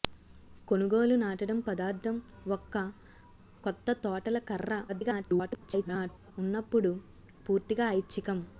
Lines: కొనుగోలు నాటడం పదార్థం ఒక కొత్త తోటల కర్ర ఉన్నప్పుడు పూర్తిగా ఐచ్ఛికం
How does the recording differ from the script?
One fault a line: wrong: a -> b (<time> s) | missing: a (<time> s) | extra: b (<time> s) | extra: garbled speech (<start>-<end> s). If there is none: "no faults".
extra: garbled speech (4.9-6.3 s)